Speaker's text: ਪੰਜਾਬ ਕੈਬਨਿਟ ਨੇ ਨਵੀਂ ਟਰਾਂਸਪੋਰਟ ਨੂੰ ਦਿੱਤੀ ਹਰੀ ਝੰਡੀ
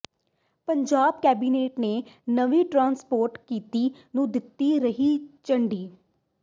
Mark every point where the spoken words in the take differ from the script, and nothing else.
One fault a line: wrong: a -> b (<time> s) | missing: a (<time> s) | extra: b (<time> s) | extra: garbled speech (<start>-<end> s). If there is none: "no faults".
extra: ਨੀਤੀ (3.5 s)